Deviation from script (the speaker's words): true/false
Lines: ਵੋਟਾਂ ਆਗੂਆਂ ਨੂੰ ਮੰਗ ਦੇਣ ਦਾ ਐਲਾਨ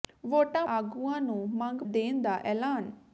false